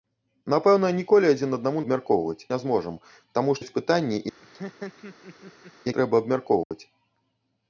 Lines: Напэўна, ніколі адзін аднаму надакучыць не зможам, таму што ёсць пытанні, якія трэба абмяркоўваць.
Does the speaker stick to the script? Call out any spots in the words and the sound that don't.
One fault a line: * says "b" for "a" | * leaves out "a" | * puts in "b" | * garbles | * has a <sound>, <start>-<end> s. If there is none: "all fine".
* says "абмяркоўваць" for "надакучыць"
* leaves out "што"
* leaves out "якія"
* has a laugh, 4.4-5.7 s
* has a dropout, 6.6-6.7 s